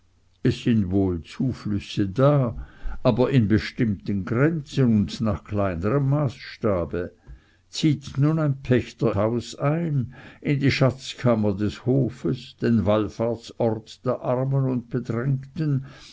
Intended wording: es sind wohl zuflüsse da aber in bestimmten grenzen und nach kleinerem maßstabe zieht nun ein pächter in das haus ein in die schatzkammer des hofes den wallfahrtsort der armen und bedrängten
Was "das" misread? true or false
true